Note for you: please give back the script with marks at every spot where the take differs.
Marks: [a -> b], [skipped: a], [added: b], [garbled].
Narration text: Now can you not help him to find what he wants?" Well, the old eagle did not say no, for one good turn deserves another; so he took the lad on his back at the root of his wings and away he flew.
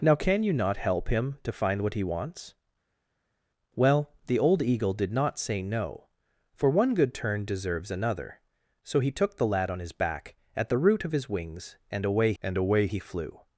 Now can you not help him to find what he wants?" Well, the old eagle did not say no, for one good turn deserves another; so he took the lad on his back at the root of his wings and away [added: and away] he flew.